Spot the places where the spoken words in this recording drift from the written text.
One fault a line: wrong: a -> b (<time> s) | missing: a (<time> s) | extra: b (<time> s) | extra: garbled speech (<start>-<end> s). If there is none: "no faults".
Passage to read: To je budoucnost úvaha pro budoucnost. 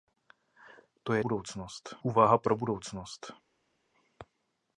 no faults